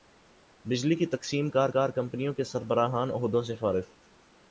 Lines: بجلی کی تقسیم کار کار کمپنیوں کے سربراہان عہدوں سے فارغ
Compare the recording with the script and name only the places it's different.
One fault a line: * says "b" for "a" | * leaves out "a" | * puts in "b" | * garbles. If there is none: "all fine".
all fine